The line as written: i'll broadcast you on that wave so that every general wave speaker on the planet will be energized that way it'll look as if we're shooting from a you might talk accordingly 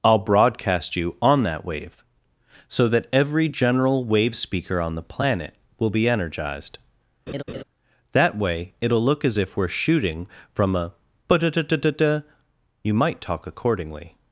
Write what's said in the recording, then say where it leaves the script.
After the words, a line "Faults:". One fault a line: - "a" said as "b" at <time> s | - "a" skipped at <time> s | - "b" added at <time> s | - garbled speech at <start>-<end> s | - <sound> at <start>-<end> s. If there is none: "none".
i'll broadcast you on that wave so that every general wave speaker on the planet will be energized that way it'll look as if we're shooting from a you might talk accordingly
Faults:
- laugh at 7.3-7.6 s